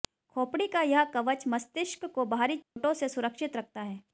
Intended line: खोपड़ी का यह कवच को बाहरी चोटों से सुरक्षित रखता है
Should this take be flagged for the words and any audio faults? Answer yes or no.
yes